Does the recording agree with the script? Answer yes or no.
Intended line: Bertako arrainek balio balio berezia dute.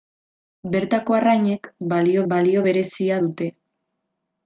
yes